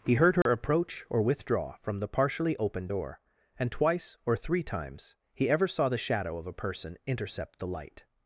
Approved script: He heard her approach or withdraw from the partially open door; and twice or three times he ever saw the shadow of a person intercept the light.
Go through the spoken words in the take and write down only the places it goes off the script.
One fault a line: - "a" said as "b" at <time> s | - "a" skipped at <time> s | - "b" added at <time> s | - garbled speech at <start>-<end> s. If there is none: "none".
none